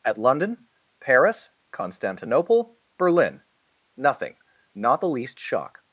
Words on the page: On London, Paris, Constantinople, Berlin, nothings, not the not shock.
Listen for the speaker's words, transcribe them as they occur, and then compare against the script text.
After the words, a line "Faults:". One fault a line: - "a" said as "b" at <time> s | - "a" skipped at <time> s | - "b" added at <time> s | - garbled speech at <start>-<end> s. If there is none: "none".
At London, Paris, Constantinople, Berlin, nothing, not the least shock.
Faults:
- "On" said as "At" at 0.0 s
- "nothings" said as "nothing" at 4.0 s
- "not" said as "least" at 5.1 s